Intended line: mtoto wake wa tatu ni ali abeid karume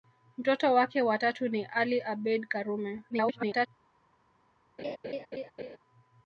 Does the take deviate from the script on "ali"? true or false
false